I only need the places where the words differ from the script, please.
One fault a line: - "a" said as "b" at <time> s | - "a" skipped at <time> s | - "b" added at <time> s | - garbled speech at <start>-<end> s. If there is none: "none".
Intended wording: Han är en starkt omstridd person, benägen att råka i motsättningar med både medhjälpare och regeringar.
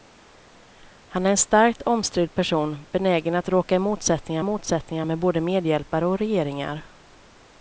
- "motsättningar" added at 4.4 s